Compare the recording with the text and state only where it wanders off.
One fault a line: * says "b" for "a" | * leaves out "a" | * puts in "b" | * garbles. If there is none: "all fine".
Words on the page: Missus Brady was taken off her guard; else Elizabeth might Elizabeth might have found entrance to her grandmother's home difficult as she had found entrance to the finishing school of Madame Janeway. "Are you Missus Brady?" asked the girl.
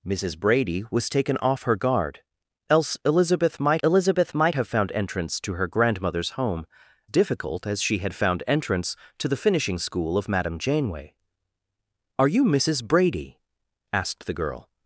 all fine